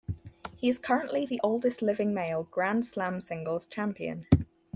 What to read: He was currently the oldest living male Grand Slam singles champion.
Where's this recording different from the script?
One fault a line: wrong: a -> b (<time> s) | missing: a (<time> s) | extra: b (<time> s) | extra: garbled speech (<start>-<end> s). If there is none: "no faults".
wrong: was -> is (0.7 s)